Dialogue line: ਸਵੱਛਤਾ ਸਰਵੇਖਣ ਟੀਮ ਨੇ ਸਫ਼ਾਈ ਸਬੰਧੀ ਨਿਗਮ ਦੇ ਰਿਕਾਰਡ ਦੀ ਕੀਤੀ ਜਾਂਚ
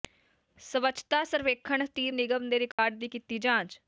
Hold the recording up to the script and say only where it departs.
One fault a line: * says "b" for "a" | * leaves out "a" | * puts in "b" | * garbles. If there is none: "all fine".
* leaves out "ਨੇ ਸਫ਼ਾਈ ਸਬੰਧੀ"